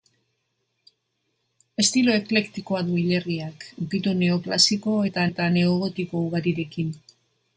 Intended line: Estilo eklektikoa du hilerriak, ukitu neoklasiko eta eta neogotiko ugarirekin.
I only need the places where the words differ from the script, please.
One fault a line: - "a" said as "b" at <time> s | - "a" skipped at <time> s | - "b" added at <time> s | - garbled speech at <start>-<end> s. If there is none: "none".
none